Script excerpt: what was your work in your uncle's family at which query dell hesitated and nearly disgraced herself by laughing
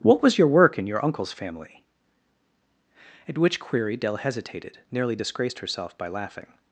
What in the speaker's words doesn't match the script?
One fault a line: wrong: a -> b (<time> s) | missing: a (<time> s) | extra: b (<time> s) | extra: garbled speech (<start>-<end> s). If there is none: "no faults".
missing: and (4.8 s)